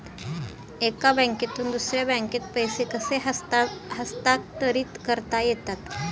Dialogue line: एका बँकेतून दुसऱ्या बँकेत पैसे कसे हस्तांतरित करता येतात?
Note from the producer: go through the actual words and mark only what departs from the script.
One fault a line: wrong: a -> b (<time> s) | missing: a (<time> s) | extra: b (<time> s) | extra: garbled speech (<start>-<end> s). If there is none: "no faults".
no faults